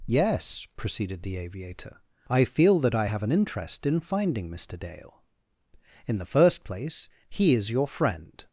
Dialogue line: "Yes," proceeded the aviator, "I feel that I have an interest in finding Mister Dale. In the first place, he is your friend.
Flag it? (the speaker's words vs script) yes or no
no